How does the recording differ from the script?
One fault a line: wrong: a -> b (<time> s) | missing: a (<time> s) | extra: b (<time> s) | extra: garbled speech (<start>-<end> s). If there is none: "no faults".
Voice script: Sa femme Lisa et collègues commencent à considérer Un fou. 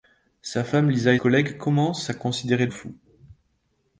no faults